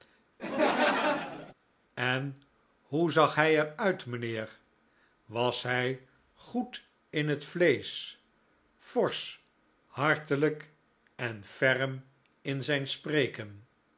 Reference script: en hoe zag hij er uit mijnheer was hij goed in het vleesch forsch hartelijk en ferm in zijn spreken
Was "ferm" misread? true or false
false